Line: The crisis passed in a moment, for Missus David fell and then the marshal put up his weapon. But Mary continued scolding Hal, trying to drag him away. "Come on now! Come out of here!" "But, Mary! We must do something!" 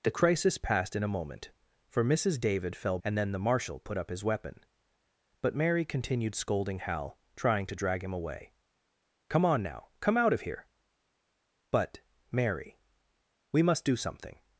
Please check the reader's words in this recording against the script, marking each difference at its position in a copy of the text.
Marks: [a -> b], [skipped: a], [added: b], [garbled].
The crisis passed in a moment, for Missus David fell and then the marshal put up his weapon. But Mary continued scolding Hal, trying to drag him away. "Come on now! Come out of here!" "But, Mary! We must do something!"